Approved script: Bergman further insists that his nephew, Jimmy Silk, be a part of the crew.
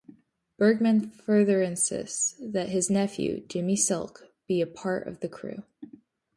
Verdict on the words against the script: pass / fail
pass